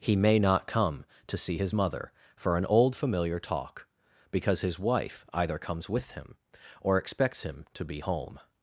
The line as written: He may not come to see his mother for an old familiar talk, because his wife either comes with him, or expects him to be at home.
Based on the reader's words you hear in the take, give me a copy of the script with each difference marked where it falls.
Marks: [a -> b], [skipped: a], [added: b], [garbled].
He may not come to see his mother for an old familiar talk, because his wife either comes with him, or expects him to be [skipped: at] home.